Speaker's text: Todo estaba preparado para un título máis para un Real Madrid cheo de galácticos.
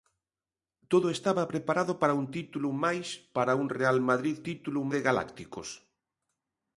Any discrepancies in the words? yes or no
yes